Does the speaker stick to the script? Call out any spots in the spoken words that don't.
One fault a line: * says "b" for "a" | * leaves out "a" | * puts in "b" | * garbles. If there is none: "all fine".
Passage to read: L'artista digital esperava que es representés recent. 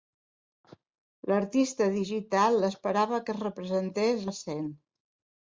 all fine